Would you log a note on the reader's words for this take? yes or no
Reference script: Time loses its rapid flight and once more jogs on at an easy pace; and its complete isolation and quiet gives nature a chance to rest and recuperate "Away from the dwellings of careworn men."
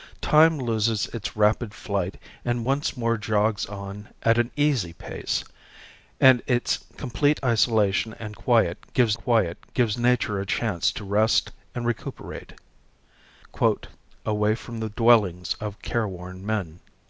yes